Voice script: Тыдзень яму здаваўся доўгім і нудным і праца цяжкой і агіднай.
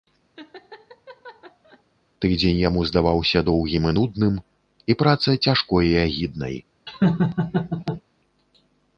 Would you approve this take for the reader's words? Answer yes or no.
yes